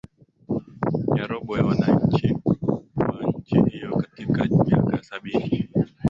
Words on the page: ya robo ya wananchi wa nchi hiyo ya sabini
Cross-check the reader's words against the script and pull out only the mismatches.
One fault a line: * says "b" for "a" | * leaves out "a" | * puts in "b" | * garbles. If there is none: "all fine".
* puts in "katika miaka"